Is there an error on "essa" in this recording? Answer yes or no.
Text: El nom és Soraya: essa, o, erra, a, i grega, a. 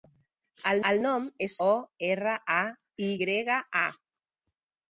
yes